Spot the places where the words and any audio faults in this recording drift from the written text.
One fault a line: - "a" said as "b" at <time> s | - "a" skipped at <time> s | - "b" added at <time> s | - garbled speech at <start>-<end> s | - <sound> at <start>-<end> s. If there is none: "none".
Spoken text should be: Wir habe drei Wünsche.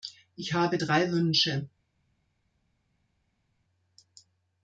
- "Wir" said as "Ich" at 0.3 s